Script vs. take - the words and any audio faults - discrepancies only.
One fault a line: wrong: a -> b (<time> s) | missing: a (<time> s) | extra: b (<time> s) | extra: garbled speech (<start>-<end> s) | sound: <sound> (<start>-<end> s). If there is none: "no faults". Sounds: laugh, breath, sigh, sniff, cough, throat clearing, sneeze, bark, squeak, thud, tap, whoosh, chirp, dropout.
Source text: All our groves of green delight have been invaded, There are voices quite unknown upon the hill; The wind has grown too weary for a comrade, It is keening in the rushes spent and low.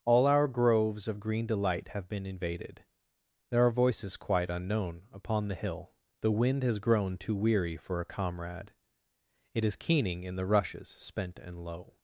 no faults